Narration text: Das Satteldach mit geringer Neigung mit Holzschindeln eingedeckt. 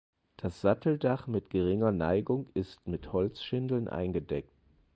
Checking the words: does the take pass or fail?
fail